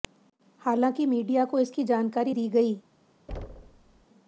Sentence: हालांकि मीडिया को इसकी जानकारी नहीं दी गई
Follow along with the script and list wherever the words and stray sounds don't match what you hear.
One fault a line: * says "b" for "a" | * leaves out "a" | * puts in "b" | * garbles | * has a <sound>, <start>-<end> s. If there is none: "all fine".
* leaves out "नहीं"
* has a thud, 3.3-4.1 s